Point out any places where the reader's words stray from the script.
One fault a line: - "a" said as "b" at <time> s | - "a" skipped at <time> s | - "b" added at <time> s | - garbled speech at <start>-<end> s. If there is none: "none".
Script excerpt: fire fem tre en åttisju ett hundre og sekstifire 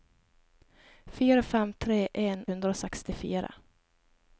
- "åttisju ett" skipped at 2.5 s